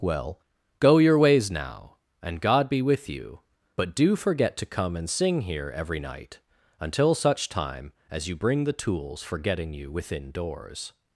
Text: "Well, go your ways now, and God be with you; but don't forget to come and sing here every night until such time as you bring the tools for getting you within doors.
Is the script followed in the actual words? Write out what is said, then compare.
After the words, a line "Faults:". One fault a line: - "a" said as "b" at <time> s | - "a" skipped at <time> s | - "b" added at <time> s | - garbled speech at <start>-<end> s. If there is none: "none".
"Well, go your ways now, and God be with you; but do forget to come and sing here every night until such time as you bring the tools for getting you within doors.
Faults:
- "don't" said as "do" at 4.0 s